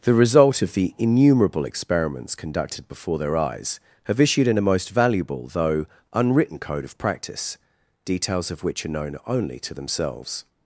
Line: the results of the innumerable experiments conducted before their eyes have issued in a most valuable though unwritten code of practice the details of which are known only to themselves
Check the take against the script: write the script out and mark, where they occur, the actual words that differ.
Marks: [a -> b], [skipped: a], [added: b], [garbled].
the [results -> result] of the innumerable experiments conducted before their eyes have issued in a most valuable though unwritten code of practice [skipped: the] details of which are known only to themselves